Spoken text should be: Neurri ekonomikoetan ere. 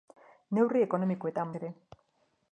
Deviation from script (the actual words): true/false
false